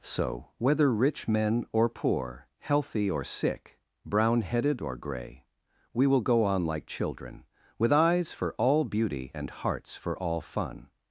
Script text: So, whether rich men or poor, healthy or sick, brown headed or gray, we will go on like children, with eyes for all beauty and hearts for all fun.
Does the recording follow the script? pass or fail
pass